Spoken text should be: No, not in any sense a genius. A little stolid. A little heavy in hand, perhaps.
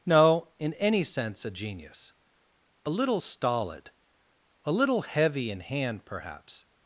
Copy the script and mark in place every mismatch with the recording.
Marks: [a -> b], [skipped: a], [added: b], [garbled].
No, [skipped: not] in any sense a genius. A little stolid. A little heavy in hand, perhaps.